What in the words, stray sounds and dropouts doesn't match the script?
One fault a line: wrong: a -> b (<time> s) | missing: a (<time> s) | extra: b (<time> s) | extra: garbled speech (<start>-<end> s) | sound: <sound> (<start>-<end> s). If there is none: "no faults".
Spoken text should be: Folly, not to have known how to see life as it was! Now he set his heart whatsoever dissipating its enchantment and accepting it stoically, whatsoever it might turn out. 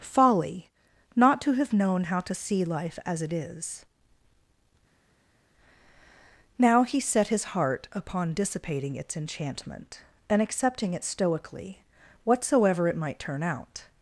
wrong: was -> is (3.3 s)
wrong: whatsoever -> upon (7.9 s)